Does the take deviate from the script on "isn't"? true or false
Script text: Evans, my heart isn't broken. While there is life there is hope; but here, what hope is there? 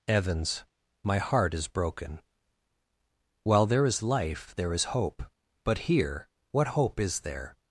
true